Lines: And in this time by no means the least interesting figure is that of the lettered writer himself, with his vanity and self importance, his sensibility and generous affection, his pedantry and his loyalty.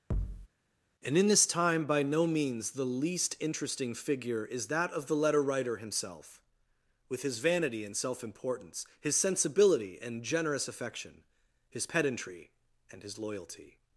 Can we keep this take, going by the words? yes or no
no